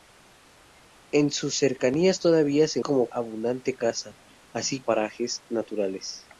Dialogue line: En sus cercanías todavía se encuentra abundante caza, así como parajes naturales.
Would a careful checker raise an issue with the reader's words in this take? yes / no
yes